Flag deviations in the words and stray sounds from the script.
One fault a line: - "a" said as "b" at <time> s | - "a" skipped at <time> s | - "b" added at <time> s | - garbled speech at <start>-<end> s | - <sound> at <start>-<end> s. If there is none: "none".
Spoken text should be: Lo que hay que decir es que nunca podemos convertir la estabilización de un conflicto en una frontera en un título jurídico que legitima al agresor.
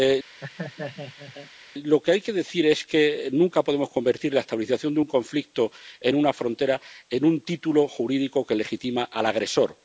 - laugh at 0.4-1.5 s